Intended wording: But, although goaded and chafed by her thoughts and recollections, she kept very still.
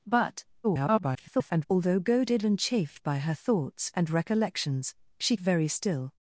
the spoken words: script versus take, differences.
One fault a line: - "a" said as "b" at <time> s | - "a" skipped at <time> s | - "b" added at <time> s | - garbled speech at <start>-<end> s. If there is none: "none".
- garbled speech at 0.6-1.7 s
- "kept" skipped at 5.4 s